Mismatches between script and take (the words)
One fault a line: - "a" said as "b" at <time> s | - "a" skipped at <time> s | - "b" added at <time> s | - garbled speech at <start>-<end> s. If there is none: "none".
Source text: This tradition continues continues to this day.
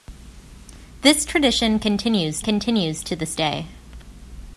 none